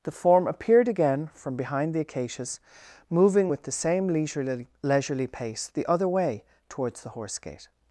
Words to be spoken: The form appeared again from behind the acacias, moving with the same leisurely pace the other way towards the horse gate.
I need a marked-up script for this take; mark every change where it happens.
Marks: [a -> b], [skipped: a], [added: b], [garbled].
The form appeared again from behind the acacias, moving with the same leisurely [added: leisurely] pace the other way towards the horse gate.